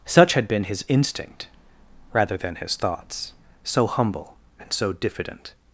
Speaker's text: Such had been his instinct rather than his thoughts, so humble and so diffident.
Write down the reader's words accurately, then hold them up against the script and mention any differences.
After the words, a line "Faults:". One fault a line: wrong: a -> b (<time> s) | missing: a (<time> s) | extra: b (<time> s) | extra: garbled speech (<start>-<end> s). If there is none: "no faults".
Such had been his instinct rather than his thoughts, so humble and so diffident.
Faults:
no faults